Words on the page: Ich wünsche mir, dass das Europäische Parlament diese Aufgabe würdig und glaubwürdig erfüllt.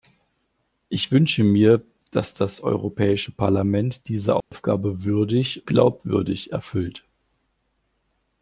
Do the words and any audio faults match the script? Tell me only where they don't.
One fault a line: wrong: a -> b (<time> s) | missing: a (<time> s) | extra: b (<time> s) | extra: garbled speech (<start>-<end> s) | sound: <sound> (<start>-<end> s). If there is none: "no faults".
sound: dropout (4.4-4.5 s)
missing: und (5.7 s)